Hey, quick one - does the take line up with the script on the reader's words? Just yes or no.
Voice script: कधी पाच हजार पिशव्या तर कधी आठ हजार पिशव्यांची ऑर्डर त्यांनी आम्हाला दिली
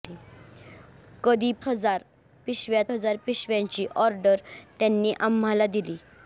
no